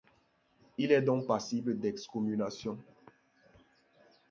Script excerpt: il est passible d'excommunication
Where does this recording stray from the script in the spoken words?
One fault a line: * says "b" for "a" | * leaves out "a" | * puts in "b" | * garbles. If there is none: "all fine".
* puts in "donc"